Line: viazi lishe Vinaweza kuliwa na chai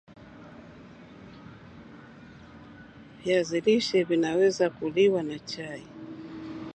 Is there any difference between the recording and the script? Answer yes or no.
no